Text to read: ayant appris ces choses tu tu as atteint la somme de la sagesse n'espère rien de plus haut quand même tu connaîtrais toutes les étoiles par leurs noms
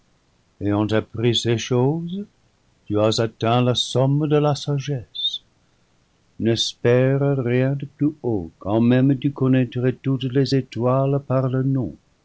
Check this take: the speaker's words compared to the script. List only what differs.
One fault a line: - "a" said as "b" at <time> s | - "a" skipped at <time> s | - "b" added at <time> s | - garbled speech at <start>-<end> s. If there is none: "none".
- "tu" skipped at 3.0 s